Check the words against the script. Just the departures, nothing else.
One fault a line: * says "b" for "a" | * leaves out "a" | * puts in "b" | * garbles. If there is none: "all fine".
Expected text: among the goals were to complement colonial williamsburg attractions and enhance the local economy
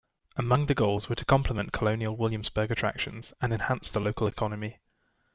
all fine